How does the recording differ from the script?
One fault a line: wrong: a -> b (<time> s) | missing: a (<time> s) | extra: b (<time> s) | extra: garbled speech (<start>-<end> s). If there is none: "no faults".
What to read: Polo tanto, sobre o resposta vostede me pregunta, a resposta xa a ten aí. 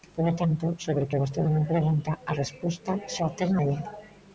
wrong: resposta -> que (1.1 s)